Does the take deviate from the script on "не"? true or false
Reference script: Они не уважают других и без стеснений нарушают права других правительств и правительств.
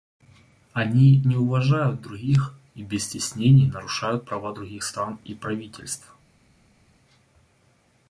false